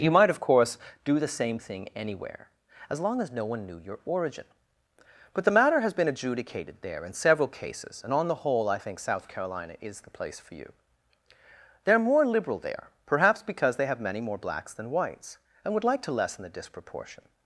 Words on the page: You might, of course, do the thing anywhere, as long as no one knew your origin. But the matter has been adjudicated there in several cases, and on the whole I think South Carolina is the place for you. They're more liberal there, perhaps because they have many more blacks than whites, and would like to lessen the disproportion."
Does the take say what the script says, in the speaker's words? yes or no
no